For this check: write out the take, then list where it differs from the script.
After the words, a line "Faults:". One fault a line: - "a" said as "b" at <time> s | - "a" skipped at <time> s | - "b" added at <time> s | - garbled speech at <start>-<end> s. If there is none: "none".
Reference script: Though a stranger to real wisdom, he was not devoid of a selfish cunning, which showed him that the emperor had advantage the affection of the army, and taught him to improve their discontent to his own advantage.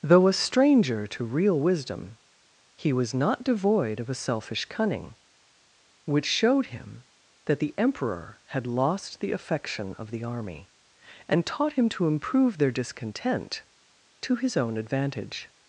Though a stranger to real wisdom, he was not devoid of a selfish cunning, which showed him that the emperor had lost the affection of the army, and taught him to improve their discontent to his own advantage.
Faults:
- "advantage" said as "lost" at 8.7 s